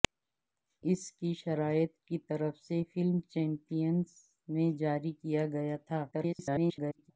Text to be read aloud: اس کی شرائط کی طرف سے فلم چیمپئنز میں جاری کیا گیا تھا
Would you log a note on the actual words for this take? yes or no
yes